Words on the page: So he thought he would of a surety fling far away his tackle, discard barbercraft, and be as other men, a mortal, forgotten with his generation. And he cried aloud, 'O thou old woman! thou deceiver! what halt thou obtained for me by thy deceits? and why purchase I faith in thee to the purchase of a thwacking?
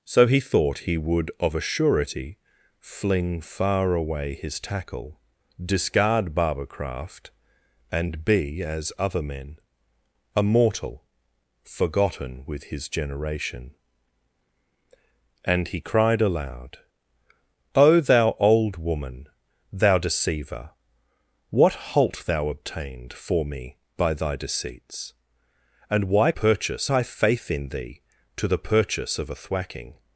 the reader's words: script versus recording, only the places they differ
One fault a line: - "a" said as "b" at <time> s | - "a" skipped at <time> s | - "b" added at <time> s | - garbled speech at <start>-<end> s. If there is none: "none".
none